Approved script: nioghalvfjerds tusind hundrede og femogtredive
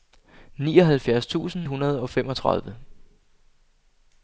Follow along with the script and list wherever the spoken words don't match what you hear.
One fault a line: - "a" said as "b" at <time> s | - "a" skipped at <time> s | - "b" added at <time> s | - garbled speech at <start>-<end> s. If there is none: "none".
none